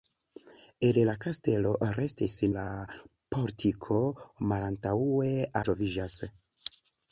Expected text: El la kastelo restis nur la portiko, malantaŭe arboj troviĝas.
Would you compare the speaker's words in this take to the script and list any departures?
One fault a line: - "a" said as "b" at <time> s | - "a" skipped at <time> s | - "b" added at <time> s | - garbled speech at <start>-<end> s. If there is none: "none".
- "nur" skipped at 2.4 s
- "arboj" skipped at 5.3 s